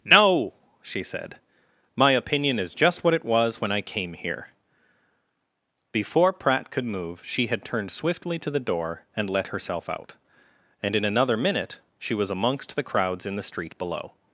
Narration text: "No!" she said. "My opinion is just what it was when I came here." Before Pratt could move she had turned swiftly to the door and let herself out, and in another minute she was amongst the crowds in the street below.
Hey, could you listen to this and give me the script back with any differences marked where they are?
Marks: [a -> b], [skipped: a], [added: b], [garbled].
"No!" she said. "My opinion is just what it was when I came here." Before Pratt could move she had turned swiftly to the door and let herself out, and in another minute she was amongst the crowds in the street below.